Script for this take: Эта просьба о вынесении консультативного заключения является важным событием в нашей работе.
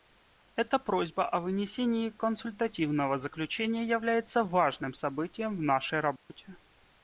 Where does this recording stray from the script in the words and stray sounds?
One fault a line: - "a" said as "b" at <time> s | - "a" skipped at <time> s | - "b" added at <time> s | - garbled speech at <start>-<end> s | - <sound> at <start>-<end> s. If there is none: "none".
- dropout at 6.2-6.3 s